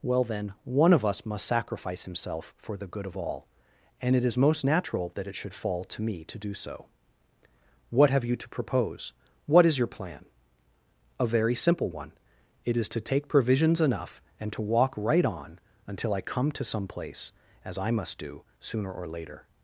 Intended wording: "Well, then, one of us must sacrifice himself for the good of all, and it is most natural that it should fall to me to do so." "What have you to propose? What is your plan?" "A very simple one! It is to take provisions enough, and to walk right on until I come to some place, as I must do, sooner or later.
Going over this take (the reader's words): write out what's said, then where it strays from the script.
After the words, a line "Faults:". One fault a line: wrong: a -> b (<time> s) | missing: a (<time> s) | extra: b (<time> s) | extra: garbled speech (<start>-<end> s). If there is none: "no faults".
"Well, then, one of us must sacrifice himself for the good of all, and it is most natural that it should fall to me to do so." "What have you to propose? What is your plan?" "A very simple one! It is to take provisions enough, and to walk right on until I come to some place, as I must do, sooner or later.
Faults:
no faults